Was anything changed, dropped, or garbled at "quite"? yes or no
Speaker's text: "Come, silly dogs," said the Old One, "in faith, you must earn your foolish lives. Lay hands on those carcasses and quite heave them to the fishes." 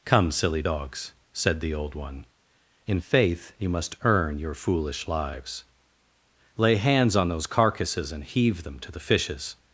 yes